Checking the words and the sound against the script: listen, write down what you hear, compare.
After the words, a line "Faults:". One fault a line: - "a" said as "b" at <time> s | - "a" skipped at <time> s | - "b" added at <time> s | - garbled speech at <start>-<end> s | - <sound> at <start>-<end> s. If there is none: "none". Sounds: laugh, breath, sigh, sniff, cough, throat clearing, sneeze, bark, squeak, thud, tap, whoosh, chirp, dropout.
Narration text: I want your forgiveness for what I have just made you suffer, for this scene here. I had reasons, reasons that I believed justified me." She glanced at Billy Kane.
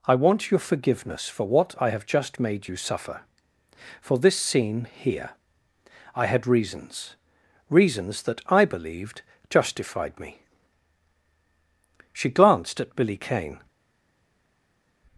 I want your forgiveness for what I have just made you suffer, for this scene here. I had reasons, reasons that I believed justified me." She glanced at Billy Kane.
Faults:
none